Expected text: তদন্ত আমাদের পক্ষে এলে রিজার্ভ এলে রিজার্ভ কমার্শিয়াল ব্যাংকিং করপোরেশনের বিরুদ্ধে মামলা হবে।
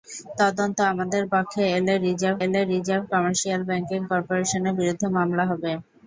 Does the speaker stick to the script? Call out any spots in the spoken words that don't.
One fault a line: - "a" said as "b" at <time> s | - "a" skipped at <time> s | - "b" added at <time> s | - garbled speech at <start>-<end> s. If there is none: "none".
none